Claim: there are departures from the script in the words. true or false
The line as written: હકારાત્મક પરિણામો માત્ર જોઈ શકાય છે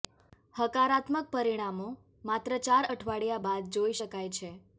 true